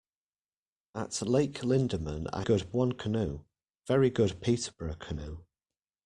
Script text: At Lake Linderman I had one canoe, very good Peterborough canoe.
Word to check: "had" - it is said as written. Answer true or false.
false